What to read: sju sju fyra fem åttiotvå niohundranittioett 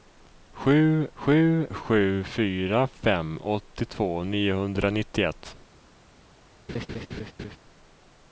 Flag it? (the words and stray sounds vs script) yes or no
yes